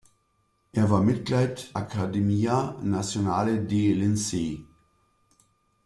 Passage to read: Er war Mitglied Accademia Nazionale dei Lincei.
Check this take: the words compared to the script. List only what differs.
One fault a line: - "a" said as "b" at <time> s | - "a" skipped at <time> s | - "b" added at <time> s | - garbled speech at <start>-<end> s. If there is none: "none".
none